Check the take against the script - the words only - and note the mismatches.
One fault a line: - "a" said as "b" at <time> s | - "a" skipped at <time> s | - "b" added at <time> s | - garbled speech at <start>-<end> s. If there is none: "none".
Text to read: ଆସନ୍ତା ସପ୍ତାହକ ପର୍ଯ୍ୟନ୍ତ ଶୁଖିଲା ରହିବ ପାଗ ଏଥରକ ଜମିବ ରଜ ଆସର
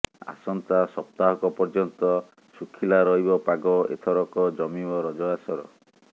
none